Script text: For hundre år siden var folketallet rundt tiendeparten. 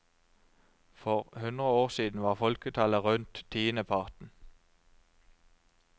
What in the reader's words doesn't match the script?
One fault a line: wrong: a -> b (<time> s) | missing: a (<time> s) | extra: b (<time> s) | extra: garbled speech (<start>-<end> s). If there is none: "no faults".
no faults